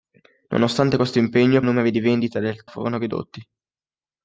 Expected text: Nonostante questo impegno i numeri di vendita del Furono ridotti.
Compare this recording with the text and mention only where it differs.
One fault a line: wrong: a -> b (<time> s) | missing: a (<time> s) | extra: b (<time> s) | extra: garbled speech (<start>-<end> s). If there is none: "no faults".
no faults